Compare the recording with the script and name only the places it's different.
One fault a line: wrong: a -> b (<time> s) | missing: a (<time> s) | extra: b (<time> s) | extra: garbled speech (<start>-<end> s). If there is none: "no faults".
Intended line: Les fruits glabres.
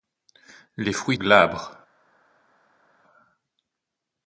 no faults